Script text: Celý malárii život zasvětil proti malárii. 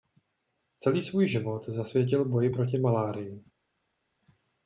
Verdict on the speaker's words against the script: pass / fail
fail